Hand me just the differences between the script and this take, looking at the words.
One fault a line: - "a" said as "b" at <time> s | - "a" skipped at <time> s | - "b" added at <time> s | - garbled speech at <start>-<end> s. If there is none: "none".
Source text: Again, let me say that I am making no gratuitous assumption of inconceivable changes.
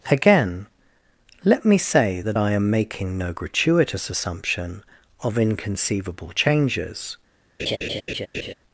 none